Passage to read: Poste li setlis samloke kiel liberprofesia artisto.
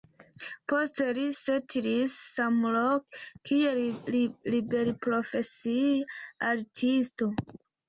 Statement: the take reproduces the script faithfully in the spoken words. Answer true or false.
true